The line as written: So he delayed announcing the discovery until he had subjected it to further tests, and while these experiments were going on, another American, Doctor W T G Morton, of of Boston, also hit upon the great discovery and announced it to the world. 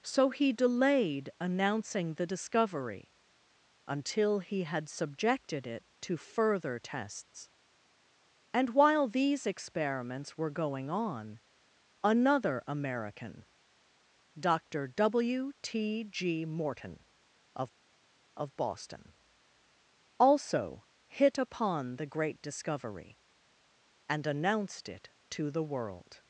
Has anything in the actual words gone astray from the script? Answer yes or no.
no